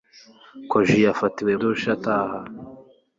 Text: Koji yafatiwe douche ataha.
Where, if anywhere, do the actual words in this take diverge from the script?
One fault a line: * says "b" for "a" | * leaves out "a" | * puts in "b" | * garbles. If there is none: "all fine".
all fine